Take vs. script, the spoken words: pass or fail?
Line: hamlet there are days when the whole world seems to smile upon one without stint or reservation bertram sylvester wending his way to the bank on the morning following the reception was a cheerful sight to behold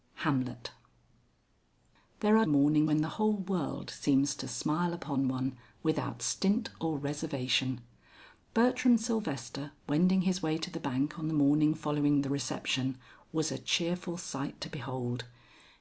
fail